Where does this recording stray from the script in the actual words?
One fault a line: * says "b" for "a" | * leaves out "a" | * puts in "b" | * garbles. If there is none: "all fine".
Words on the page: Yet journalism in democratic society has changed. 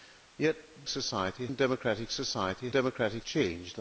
* says "society" for "journalism"
* says "democratic" for "has"